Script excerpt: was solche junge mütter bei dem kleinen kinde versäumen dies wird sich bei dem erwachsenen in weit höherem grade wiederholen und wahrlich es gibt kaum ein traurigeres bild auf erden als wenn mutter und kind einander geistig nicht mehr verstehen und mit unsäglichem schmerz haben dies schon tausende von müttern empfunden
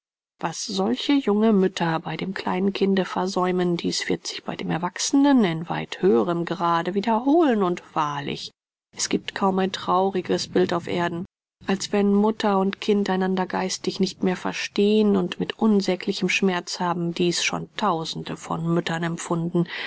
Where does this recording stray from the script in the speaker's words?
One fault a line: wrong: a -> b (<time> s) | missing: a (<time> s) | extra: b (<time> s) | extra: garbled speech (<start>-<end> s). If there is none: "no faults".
no faults